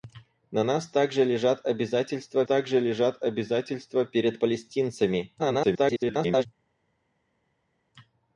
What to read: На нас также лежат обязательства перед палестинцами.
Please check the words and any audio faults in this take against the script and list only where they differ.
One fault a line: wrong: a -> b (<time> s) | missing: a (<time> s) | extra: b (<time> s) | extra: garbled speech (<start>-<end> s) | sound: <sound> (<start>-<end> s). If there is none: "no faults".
extra: также лежат обязательства (2.4 s)
extra: garbled speech (5.4-6.5 s)